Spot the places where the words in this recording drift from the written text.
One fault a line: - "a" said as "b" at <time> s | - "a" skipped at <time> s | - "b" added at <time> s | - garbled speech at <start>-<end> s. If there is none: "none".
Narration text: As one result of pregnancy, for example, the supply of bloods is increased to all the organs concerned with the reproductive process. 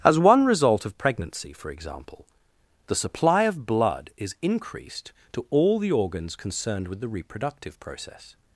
- "bloods" said as "blood" at 3.7 s